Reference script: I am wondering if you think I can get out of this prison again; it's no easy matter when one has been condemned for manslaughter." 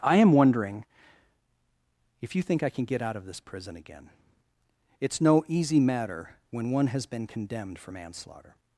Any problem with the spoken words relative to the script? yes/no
no